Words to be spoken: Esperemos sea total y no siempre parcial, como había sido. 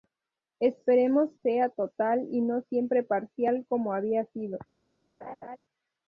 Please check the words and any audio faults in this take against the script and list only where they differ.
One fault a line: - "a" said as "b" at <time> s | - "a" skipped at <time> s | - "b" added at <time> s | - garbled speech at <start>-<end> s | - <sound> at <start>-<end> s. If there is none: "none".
- laugh at 5.2-5.6 s